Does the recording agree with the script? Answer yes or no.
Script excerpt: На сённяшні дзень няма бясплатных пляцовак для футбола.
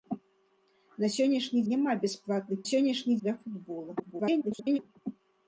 no